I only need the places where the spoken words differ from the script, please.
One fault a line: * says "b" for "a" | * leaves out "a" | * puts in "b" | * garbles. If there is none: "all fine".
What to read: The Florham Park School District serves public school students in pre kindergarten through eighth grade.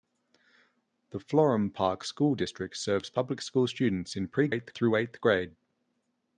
* says "eighth" for "kindergarten"